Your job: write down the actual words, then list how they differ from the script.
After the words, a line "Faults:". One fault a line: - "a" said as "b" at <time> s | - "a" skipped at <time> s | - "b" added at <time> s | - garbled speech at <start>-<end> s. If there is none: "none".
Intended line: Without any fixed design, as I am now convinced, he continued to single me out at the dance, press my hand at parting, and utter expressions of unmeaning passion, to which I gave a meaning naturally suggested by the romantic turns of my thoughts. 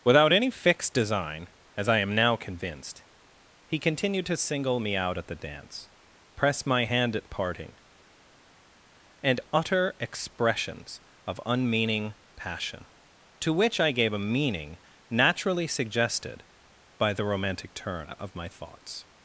Without any fixed design, as I am now convinced, he continued to single me out at the dance, press my hand at parting, and utter expressions of unmeaning passion, to which I gave a meaning naturally suggested by the romantic turn of my thoughts.
Faults:
- "turns" said as "turn" at 17.7 s